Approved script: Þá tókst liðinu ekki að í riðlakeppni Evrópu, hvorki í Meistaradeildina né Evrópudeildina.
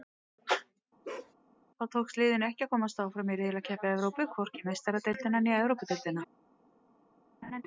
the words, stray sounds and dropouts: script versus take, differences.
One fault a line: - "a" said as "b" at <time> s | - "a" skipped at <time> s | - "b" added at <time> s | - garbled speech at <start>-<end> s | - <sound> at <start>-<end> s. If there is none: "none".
- bark at 1.0-1.3 s
- "komast áfram" added at 2.7 s
- laugh at 7.4-7.6 s